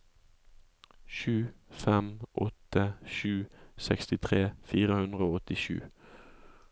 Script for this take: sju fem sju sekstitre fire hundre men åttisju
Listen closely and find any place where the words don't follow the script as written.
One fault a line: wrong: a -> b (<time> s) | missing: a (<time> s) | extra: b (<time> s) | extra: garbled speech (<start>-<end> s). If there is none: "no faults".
extra: åtte (2.5 s)
wrong: men -> og (5.3 s)